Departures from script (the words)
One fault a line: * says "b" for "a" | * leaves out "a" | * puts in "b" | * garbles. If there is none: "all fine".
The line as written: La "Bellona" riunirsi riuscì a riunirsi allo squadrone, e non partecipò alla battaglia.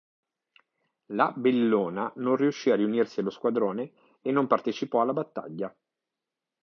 * says "non" for "riunirsi"